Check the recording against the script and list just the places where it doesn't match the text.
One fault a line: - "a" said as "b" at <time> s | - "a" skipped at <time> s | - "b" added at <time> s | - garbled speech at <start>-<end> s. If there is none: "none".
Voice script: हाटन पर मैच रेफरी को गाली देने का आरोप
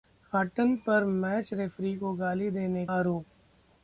- "का" skipped at 2.9 s